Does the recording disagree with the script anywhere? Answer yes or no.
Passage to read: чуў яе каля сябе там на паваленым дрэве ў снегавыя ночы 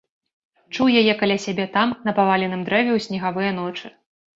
no